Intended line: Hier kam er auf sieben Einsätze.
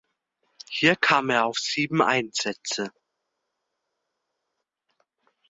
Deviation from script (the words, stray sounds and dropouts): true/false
false